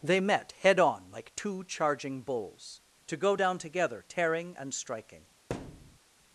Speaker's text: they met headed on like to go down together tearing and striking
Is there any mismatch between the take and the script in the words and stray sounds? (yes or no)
yes